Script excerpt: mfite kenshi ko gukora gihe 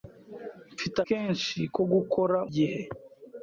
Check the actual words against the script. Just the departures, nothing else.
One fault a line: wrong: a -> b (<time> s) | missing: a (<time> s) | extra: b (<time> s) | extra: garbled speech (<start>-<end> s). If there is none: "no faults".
no faults